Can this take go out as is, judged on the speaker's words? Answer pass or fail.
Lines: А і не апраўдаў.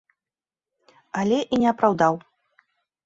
fail